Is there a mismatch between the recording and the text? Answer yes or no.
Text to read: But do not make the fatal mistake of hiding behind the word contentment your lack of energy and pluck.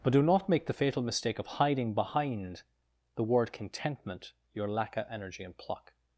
no